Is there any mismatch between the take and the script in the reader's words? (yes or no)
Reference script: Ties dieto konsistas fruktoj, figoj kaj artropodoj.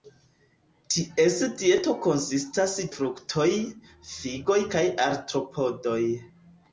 no